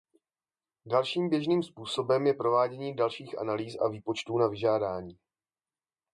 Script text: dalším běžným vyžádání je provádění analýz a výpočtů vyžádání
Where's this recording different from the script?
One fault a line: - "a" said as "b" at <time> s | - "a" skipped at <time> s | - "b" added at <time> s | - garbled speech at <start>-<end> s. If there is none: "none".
- "vyžádání" said as "způsobem" at 1.6 s
- "dalších" added at 3.0 s
- "na" added at 4.4 s